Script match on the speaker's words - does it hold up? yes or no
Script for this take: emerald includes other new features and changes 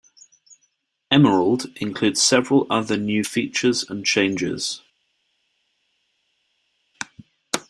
no